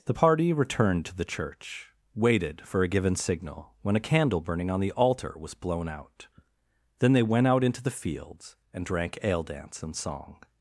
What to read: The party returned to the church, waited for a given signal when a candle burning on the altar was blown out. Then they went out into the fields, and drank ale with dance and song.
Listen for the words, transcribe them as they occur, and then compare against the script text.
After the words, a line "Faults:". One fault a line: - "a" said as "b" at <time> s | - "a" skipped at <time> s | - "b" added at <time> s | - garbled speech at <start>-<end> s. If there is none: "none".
The party returned to the church, waited for a given signal when a candle burning on the altar was blown out. Then they went out into the fields, and drank ale dance and song.
Faults:
- "with" skipped at 9.4 s